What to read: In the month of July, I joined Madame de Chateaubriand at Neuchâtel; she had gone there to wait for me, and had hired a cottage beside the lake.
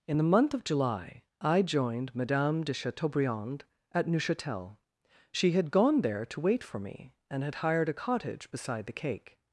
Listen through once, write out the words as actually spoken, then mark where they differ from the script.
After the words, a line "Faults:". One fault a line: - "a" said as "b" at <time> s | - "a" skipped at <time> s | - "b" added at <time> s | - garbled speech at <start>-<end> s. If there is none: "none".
In the month of July, I joined Madame de Chateaubriand at Neuchâtel; she had gone there to wait for me, and had hired a cottage beside the cake.
Faults:
- "lake" said as "cake" at 9.0 s